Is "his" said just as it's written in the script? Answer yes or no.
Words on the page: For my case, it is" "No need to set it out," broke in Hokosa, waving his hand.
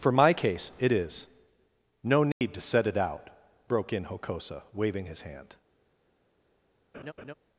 yes